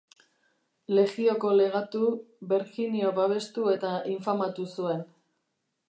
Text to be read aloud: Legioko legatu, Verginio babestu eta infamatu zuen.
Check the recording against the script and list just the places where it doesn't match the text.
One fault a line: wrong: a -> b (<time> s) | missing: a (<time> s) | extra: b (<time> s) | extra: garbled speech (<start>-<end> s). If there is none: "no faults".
no faults